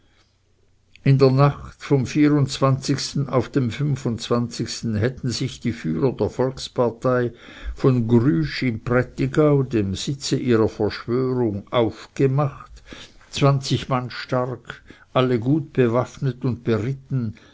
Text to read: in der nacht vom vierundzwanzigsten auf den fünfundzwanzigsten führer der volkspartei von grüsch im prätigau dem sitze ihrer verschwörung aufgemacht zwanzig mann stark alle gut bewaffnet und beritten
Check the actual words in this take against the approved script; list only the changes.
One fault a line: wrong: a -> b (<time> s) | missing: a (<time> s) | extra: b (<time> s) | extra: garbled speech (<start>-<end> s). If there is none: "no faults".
extra: hätten sich die (5.0 s)